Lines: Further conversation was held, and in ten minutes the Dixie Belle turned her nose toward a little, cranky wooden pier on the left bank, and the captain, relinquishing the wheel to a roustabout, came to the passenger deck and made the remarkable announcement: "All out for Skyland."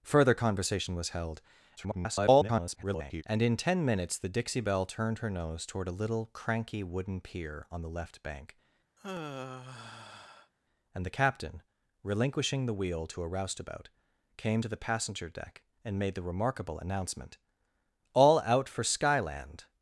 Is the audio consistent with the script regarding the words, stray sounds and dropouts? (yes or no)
no